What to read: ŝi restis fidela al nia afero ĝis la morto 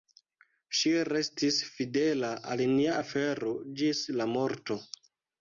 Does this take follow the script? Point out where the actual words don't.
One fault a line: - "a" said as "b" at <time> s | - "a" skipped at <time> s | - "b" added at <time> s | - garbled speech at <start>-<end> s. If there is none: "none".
none